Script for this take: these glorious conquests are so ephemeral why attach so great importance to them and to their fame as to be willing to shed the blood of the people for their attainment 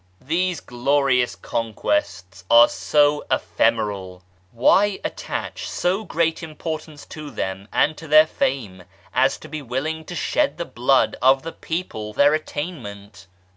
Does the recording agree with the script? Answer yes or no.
no